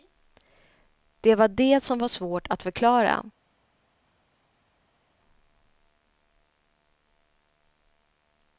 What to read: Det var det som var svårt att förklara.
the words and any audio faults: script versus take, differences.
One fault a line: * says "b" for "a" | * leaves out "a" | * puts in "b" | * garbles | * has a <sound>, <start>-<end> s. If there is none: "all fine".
all fine